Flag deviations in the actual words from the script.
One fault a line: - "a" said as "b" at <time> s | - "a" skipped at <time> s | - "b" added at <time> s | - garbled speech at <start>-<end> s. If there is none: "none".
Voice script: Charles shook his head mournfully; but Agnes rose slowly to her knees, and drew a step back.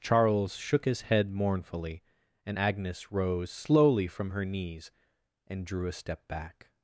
- "but" said as "and" at 2.5 s
- "to" said as "from" at 4.1 s